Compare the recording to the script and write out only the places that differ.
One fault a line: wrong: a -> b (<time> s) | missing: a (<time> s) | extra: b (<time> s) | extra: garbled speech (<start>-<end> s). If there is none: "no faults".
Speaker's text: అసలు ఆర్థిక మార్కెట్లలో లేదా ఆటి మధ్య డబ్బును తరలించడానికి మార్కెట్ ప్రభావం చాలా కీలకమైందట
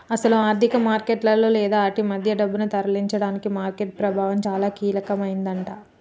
no faults